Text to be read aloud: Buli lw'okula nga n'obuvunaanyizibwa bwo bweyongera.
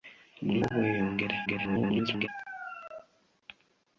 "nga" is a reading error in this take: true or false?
true